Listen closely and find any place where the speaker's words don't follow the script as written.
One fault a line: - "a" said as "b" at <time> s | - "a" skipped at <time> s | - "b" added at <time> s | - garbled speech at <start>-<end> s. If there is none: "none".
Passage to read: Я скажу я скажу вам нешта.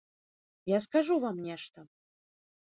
- "я скажу" skipped at 1.2 s